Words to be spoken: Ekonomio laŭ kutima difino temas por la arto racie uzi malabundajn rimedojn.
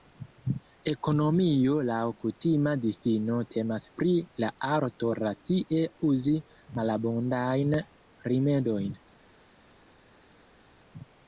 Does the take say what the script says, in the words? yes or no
no